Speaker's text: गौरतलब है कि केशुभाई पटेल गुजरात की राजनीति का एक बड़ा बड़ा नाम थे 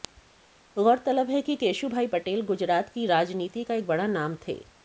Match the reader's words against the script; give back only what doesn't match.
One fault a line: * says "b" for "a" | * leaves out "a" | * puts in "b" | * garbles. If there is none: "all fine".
* leaves out "बड़ा"